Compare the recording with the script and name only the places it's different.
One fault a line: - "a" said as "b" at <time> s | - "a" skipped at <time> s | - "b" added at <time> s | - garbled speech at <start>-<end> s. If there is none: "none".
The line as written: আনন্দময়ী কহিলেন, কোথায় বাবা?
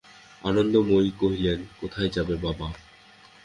- "যাবে" added at 2.1 s